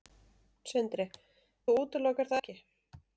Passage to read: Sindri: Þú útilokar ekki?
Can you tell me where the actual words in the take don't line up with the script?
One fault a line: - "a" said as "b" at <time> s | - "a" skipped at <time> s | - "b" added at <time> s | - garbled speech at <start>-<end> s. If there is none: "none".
none